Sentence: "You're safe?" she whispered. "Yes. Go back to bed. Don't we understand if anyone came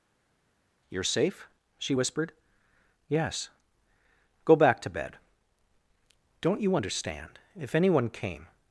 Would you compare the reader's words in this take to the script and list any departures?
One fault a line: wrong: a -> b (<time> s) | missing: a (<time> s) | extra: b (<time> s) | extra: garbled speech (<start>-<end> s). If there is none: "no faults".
wrong: we -> you (6.6 s)